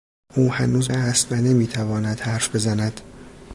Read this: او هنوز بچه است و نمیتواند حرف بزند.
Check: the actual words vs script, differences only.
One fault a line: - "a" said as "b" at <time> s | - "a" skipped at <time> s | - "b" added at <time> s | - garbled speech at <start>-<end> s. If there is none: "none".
- "بچه" skipped at 0.9 s